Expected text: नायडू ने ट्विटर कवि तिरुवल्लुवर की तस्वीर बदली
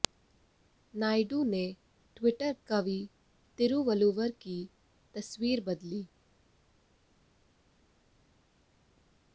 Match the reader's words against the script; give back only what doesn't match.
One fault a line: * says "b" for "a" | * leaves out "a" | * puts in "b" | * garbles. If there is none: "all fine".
all fine